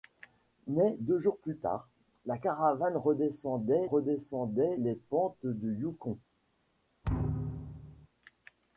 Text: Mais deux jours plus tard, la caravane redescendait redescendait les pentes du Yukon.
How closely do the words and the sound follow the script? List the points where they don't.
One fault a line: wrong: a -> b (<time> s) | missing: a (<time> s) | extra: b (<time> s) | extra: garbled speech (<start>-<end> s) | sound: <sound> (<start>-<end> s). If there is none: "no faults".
sound: thud (7.0-8.1 s)